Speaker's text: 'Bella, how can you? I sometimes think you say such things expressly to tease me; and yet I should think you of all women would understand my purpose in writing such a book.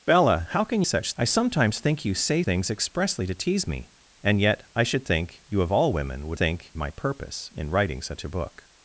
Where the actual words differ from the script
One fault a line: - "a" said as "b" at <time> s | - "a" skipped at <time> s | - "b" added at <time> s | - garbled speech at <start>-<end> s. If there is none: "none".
- "you" said as "such" at 0.8 s
- "such" skipped at 2.4 s
- "understand" said as "think" at 6.4 s